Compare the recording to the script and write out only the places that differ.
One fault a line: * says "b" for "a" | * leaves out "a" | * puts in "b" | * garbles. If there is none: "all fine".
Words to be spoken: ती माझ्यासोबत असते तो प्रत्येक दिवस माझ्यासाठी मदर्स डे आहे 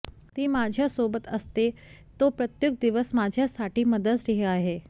all fine